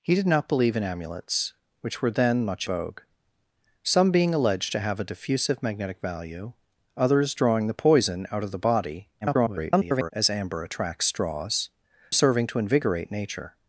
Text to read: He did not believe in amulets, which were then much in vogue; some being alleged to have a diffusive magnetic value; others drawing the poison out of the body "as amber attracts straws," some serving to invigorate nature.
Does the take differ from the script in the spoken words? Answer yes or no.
yes